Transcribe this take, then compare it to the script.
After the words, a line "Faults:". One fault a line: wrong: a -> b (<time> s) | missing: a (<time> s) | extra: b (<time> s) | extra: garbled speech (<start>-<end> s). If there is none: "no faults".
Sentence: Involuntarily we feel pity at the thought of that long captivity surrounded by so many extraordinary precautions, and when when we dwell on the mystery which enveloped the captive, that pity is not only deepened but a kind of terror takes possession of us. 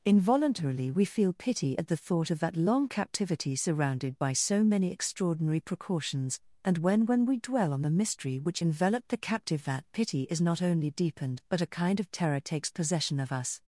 Involuntarily we feel pity at the thought of that long captivity surrounded by so many extraordinary precautions, and when when we dwell on the mystery which enveloped the captive, that pity is not only deepened but a kind of terror takes possession of us.
Faults:
no faults